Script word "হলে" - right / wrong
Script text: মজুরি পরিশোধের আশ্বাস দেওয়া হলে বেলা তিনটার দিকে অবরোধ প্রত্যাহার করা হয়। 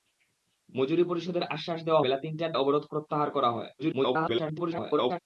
wrong